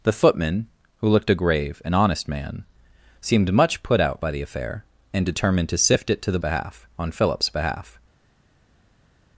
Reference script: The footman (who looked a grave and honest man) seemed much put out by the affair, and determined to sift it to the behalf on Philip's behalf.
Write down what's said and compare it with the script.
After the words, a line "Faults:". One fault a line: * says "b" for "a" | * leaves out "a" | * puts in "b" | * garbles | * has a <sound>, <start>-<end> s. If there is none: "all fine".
The footman (who looked a grave and honest man) seemed much put out by the affair, and determined to sift it to the behalf on Philip's behalf.
Faults:
all fine